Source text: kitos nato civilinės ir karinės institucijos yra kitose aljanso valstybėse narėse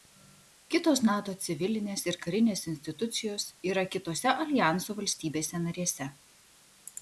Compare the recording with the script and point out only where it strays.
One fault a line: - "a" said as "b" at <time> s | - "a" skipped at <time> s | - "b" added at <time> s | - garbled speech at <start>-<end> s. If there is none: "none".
none